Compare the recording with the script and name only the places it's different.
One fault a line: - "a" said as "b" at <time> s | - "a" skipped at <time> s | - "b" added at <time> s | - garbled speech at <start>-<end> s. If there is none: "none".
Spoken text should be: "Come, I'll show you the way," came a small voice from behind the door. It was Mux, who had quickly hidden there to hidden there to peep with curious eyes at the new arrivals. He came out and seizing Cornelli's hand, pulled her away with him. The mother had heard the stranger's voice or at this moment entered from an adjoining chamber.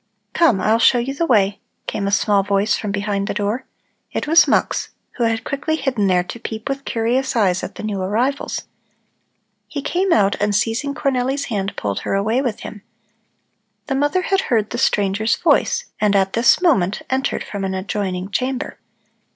- "hidden there to" skipped at 6.4 s
- "or" said as "and" at 16.0 s